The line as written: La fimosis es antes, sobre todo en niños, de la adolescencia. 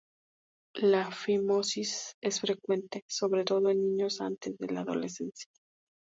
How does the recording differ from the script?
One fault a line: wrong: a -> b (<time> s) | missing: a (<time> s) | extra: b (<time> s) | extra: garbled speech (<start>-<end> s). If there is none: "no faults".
wrong: antes -> frecuente (2.4 s)
extra: antes (4.2 s)